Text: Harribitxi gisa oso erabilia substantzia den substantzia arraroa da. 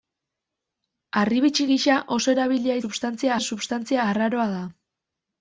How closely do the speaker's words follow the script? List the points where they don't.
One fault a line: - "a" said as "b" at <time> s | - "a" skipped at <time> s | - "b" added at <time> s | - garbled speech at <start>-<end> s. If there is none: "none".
none